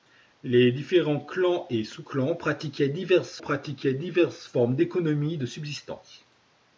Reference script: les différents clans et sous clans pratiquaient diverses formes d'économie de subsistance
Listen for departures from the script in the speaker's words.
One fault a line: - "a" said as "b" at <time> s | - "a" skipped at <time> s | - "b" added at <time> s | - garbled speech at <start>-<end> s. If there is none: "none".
- "pratiquaient diverses" added at 3.4 s